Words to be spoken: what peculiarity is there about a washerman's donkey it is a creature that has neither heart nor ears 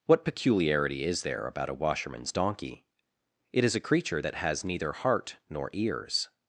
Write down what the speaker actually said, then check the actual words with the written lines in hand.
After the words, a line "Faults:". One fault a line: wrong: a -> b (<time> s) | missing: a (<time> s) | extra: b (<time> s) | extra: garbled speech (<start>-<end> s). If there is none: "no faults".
what peculiarity is there about a washerman's donkey it is a creature that has neither heart nor ears
Faults:
no faults